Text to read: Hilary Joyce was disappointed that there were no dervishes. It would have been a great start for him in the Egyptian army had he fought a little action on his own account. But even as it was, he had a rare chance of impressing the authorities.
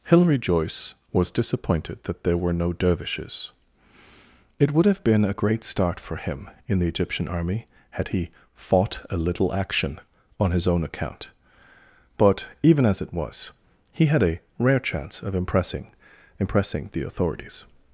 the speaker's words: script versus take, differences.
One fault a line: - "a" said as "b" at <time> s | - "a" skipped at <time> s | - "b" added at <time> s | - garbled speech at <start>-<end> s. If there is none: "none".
- "impressing" added at 16.4 s